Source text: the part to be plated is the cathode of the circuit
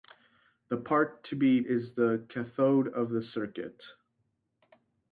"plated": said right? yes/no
no